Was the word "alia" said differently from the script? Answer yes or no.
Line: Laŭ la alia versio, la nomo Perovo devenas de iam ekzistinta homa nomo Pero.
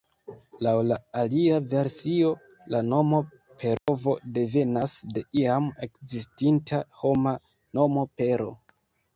no